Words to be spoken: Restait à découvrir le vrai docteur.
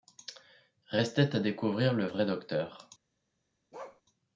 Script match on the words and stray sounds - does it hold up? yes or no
no